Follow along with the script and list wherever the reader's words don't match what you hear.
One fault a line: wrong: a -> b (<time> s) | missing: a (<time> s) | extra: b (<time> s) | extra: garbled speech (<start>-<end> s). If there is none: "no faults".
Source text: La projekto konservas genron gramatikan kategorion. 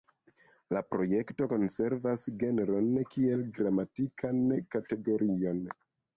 extra: kiel (3.1 s)